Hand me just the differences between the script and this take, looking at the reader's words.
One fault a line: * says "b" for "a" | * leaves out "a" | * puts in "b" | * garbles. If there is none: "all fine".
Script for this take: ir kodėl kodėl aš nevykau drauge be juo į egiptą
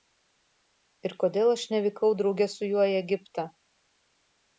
* leaves out "kodėl"
* says "su" for "be"